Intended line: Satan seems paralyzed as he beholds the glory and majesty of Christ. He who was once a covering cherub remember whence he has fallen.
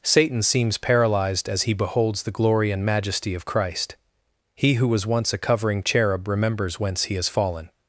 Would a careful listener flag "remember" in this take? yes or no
yes